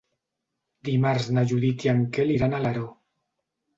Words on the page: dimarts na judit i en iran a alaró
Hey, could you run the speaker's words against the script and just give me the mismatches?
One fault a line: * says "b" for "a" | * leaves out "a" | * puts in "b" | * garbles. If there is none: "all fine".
* puts in "quel"